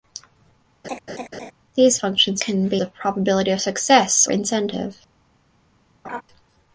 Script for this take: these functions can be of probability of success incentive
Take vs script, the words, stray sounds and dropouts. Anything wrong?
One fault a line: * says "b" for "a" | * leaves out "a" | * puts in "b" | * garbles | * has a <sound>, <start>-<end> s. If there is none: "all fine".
* has a laugh, 0.8-1.5 s
* has a laugh, 6.0-6.2 s